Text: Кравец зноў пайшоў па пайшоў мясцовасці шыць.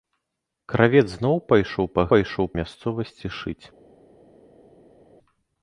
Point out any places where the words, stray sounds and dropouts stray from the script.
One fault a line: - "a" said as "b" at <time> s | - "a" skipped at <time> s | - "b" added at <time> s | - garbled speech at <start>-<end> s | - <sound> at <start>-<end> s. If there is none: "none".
none